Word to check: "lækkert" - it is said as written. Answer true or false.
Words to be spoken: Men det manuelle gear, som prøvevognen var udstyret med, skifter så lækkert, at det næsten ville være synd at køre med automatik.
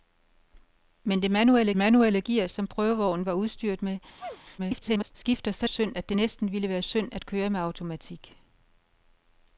false